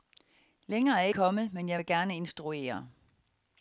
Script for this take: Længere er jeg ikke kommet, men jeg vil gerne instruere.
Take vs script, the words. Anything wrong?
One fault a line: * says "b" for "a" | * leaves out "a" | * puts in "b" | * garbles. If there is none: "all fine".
* leaves out "ikke"